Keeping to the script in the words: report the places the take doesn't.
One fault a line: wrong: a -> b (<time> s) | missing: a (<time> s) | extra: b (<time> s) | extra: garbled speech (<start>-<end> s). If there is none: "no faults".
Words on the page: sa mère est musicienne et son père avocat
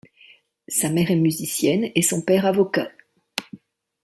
no faults